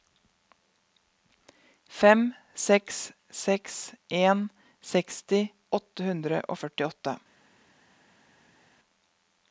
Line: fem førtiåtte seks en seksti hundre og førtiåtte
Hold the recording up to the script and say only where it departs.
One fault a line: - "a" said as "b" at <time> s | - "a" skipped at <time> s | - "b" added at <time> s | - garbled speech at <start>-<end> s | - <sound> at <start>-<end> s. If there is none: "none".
- "førtiåtte" said as "seks" at 2.7 s
- "åtte" added at 5.8 s